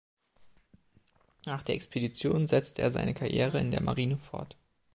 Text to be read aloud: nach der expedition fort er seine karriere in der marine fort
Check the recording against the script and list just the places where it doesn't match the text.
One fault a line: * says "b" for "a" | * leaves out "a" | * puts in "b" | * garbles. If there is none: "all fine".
* says "setzte" for "fort"